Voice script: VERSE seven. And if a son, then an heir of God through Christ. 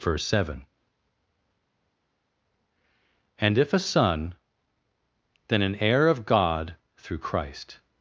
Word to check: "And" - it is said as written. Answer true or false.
true